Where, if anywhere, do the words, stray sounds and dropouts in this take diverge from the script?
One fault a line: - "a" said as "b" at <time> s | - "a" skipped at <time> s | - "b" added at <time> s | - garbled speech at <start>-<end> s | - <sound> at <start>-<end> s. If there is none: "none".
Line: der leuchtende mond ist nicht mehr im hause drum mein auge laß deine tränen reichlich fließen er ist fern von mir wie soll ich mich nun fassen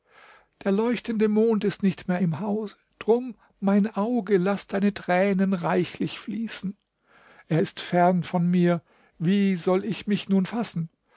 none